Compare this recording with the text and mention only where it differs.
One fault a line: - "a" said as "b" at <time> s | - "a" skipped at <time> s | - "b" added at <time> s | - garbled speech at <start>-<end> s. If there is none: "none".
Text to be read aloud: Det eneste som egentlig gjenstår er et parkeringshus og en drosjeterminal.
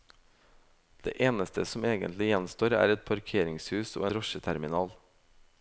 - "en" skipped at 4.1 s